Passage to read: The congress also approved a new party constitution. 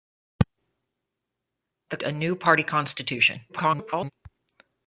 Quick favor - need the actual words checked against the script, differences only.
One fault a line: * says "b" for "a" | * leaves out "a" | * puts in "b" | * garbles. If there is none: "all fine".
* leaves out "congress also approved"
* garbles